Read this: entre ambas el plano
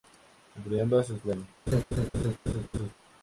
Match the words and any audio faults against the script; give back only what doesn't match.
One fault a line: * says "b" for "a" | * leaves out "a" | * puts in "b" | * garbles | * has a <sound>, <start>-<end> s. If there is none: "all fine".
* has a laugh, 1.7-2.9 s